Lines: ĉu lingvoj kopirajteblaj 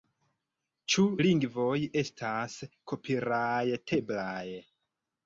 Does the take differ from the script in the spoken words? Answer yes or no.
yes